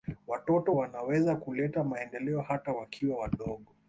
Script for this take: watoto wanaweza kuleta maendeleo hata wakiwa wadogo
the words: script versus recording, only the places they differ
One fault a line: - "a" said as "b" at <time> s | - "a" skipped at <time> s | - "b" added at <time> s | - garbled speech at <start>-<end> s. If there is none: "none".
none